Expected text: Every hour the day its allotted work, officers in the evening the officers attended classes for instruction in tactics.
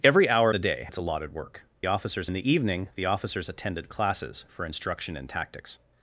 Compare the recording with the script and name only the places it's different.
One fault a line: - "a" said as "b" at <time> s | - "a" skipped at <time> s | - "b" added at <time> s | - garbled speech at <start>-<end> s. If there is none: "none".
none